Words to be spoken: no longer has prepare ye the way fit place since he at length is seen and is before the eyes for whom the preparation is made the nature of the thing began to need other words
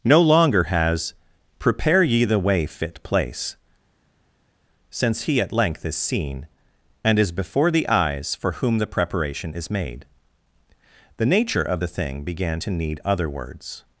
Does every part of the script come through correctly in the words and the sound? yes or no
yes